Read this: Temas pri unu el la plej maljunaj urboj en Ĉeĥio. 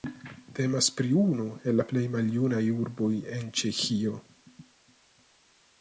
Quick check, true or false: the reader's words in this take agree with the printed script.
true